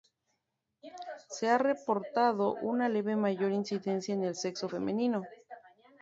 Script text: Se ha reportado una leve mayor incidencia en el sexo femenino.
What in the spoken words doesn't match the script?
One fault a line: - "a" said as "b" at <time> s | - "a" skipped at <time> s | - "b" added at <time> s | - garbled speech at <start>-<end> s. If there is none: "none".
none